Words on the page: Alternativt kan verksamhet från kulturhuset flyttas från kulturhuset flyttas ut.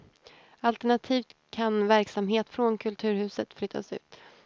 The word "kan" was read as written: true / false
true